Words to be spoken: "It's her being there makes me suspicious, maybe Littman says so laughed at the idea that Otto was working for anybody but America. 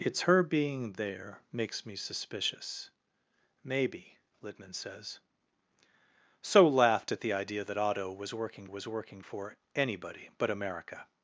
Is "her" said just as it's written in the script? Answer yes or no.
yes